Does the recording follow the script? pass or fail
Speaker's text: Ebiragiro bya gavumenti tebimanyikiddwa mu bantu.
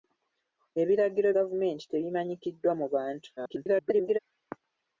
fail